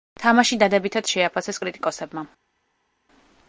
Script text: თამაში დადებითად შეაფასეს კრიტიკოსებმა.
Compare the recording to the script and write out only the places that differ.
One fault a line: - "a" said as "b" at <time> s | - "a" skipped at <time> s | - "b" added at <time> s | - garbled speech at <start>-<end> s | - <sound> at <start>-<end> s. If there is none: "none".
none